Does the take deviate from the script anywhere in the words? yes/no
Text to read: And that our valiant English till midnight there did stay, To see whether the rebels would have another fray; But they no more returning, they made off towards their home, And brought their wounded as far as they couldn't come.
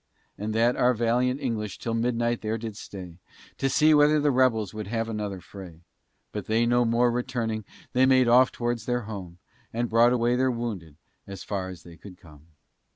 yes